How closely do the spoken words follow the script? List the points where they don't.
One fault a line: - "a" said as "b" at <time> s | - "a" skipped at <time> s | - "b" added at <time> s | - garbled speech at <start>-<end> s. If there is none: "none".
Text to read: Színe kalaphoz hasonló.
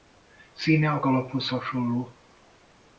- "a" added at 0.9 s